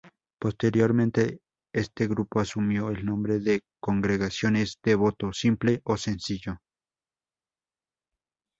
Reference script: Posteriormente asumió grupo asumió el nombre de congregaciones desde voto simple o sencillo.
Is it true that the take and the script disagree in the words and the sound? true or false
true